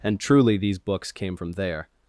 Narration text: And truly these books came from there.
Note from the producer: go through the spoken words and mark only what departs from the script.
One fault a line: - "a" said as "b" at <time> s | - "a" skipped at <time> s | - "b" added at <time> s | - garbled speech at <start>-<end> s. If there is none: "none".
none